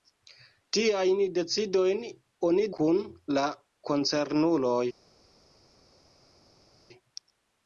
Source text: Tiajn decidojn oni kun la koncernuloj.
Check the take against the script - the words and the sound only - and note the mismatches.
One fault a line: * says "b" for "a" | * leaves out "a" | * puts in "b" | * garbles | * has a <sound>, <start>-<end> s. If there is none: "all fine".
all fine